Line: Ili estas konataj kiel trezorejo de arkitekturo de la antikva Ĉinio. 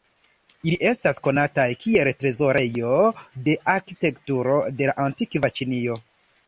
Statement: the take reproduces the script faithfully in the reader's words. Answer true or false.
true